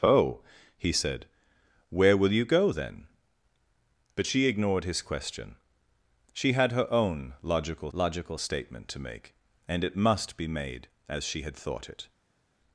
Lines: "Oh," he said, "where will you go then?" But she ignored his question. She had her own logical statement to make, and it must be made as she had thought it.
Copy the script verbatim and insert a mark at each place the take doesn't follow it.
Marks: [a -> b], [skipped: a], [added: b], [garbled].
"Oh," he said, "where will you go then?" But she ignored his question. She had her own logical [added: logical] statement to make, and it must be made as she had thought it.